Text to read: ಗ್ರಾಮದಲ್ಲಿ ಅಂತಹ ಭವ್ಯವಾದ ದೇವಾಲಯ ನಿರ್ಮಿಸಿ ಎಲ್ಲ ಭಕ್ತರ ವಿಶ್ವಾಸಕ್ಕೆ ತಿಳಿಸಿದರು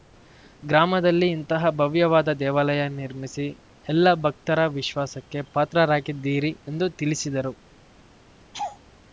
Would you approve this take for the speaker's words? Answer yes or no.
no